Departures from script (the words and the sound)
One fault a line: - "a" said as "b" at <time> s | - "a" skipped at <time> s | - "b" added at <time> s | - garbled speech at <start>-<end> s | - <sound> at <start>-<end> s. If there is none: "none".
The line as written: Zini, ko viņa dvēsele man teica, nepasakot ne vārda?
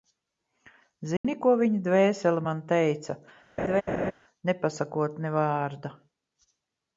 - dropout at 1.2-1.2 s
- laugh at 3.6-4.1 s